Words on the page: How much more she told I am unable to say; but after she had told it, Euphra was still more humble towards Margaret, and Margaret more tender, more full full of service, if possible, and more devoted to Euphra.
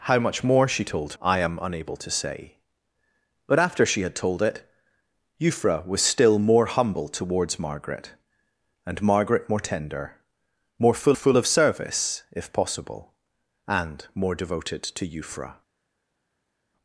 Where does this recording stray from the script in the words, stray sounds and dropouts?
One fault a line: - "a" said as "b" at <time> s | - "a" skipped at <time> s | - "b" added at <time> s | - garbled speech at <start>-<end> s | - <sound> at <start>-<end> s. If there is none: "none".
none